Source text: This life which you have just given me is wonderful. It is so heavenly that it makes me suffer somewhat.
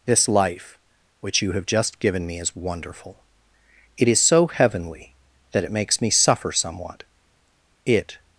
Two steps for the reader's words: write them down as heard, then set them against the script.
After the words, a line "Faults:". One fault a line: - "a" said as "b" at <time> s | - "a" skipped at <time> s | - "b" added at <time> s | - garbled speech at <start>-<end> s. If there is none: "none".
This life which you have just given me is wonderful. It is so heavenly that it makes me suffer somewhat. It
Faults:
- "It" added at 7.8 s